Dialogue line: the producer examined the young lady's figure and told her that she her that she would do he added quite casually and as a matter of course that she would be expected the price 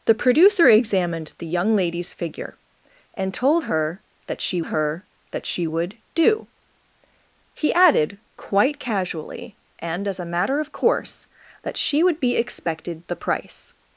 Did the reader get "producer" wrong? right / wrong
right